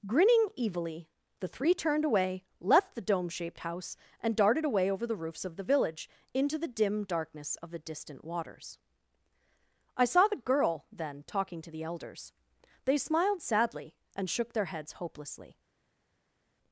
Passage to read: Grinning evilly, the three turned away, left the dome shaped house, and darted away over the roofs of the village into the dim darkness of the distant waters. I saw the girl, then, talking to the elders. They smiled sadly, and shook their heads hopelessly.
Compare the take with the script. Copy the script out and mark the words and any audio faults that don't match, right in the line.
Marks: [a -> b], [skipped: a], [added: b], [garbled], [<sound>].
Grinning evilly, the three turned away, left the dome shaped house, and darted away over the roofs of the village into the dim darkness of the distant waters. I saw the girl, then, talking to the elders. They smiled sadly, and shook their heads hopelessly.